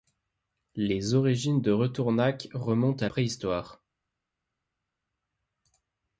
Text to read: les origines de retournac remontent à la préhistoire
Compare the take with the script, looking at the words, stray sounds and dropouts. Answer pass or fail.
fail